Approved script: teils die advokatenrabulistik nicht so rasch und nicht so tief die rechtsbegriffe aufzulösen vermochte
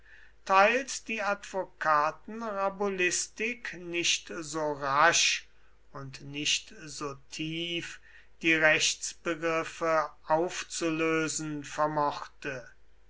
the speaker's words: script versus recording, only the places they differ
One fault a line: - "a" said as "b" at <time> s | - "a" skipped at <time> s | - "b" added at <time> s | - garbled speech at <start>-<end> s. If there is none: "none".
none